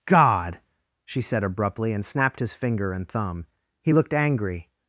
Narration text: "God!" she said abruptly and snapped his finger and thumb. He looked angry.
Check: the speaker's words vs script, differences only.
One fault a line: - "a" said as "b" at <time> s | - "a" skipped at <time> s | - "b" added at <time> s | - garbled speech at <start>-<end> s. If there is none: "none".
none